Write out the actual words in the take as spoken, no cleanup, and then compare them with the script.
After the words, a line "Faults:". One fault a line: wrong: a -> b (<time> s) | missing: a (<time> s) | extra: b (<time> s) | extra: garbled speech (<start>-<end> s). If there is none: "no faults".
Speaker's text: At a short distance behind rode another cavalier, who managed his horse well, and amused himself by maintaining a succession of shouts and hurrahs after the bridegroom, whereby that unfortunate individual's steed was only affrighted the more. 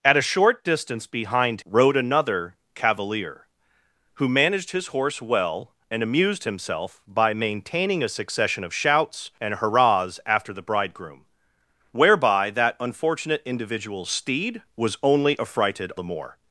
At a short distance behind rode another cavalier, who managed his horse well, and amused himself by maintaining a succession of shouts and hurrahs after the bridegroom, whereby that unfortunate individual's steed was only affrighted the more.
Faults:
no faults